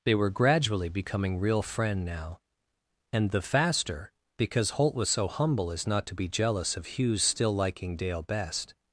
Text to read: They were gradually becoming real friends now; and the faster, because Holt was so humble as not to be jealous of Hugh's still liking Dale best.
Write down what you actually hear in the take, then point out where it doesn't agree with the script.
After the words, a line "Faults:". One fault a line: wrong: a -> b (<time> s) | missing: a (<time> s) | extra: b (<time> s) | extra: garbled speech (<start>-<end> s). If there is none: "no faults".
They were gradually becoming real friend now; and the faster, because Holt was so humble as not to be jealous of Hugh's still liking Dale best.
Faults:
wrong: friends -> friend (1.6 s)